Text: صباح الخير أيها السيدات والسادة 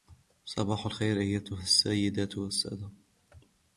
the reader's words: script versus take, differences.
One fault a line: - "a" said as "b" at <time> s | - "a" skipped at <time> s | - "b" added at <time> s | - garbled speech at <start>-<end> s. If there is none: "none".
none